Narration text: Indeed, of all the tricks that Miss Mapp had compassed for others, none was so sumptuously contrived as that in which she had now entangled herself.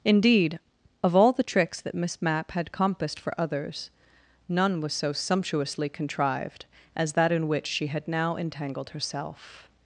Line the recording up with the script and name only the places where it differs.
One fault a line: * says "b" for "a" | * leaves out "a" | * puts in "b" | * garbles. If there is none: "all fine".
all fine